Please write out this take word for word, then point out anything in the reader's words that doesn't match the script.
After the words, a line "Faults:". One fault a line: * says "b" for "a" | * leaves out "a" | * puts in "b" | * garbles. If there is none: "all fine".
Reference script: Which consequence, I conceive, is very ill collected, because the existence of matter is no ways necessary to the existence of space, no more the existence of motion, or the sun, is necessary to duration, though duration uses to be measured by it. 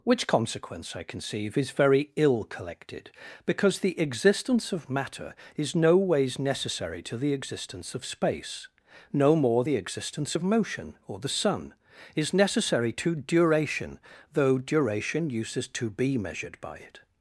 Which consequence, I conceive, is very ill collected, because the existence of matter is no ways necessary to the existence of space, no more the existence of motion, or the sun, is necessary to duration, though duration uses to be measured by it.
Faults:
all fine